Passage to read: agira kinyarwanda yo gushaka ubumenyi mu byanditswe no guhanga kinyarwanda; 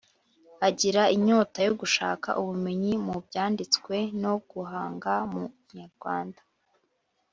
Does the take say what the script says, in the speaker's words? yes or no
no